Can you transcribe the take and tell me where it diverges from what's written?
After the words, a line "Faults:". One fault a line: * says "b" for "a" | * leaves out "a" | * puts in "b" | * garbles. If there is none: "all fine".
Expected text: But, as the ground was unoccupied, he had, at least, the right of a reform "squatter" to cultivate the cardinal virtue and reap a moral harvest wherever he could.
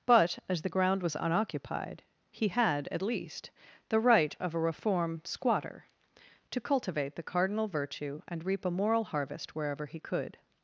But, as the ground was unoccupied, he had, at least, the right of a reform "squatter" to cultivate the cardinal virtue and reap a moral harvest wherever he could.
Faults:
all fine